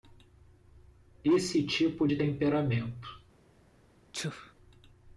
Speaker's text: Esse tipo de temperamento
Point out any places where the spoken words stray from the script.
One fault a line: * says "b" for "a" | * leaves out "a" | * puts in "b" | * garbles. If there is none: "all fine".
all fine